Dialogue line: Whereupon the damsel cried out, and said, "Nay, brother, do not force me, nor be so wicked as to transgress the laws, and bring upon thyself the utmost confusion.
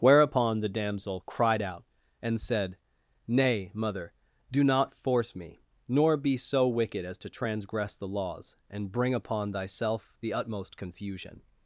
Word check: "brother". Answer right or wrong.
wrong